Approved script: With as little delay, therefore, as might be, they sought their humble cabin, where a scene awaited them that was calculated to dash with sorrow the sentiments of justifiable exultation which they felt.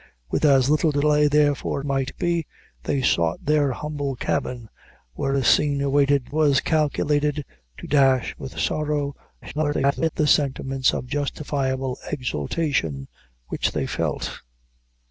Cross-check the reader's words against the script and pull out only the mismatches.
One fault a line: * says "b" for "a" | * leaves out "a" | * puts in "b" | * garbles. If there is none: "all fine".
* leaves out "as"
* leaves out "them that"
* garbles